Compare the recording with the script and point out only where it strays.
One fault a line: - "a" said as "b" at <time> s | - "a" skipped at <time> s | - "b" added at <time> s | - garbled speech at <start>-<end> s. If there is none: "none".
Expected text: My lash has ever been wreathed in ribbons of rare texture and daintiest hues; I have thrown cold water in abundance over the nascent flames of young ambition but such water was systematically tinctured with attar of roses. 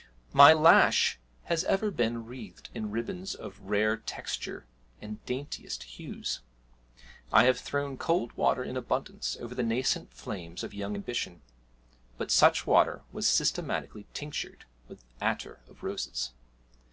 none